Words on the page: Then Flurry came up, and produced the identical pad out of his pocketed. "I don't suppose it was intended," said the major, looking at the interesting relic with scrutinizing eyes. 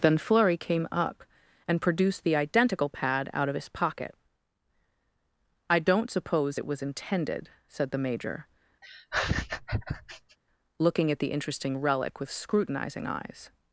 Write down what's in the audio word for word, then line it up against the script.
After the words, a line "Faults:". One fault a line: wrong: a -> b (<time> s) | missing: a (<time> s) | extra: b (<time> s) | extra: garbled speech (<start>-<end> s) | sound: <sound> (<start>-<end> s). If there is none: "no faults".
Then Flurry came up, and produced the identical pad out of his pocket. "I don't suppose it was intended," said the major, looking at the interesting relic with scrutinizing eyes.
Faults:
wrong: pocketed -> pocket (3.7 s)
sound: laugh (8.8-10.4 s)